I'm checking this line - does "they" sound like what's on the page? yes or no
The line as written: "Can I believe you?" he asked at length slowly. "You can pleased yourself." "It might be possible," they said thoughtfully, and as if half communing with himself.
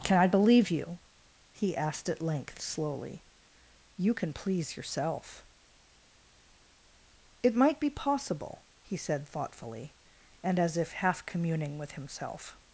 no